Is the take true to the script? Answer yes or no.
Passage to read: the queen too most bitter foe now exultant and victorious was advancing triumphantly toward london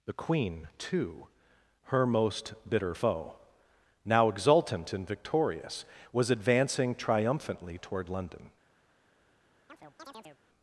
no